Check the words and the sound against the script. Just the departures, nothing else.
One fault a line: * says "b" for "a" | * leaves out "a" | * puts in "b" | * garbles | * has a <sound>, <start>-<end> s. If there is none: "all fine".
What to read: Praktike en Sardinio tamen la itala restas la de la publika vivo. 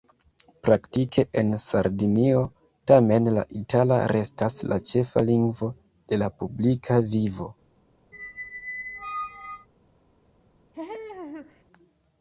* puts in "ĉefa lingvo"
* has a squeak, 8.1-9.7 s
* has a laugh, 10.7-11.6 s